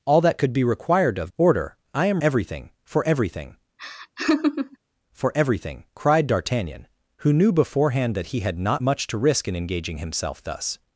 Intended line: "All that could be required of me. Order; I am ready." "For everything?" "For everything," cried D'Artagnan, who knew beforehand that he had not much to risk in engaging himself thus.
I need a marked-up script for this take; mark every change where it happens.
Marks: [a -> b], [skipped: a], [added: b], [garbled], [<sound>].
"All that could be required of [skipped: me.] Order; I am [ready." -> everything] "For everything?" [laugh] "For everything," cried D'Artagnan, who knew beforehand that he had not much to risk in engaging himself thus.